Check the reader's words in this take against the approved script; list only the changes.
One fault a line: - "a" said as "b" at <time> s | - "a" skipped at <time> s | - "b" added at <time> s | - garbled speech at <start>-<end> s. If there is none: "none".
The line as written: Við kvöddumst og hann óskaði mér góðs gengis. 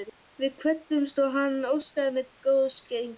none